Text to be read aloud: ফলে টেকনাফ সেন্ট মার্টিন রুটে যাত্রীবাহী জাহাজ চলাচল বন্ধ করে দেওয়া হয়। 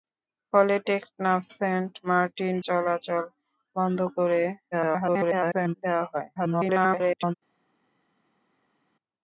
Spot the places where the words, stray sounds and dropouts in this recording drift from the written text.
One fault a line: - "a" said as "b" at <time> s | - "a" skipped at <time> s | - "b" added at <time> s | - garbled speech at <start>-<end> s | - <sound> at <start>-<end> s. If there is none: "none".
- "রুটে যাত্রীবাহী জাহাজ" skipped at 2.5 s
- garbled speech at 4.7-5.7 s
- garbled speech at 6.4-7.3 s